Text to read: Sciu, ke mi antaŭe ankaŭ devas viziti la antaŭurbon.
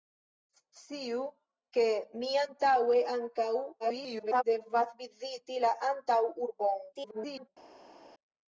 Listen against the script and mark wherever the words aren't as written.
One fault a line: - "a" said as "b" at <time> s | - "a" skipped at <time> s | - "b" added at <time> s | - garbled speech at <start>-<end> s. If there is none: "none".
- garbled speech at 3.8-4.4 s
- garbled speech at 6.9-7.5 s